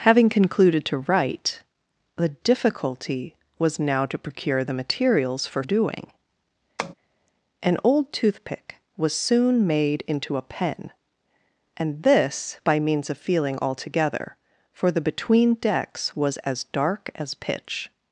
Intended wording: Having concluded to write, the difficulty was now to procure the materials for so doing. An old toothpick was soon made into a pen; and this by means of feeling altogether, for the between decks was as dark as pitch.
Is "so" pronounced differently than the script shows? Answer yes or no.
yes